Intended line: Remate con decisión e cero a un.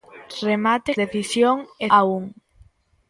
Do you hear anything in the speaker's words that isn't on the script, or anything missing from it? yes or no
yes